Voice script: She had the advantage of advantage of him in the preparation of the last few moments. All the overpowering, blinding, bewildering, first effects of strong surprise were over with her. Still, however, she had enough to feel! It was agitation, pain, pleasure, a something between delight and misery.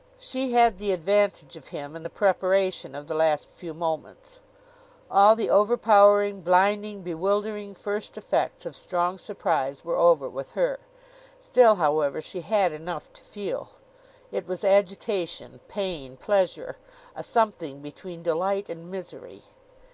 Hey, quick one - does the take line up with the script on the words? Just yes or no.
no